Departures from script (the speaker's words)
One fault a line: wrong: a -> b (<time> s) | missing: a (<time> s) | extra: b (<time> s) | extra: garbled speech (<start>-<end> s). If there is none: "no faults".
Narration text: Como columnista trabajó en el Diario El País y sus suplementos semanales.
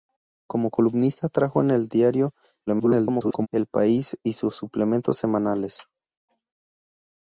extra: garbled speech (2.7-3.5 s)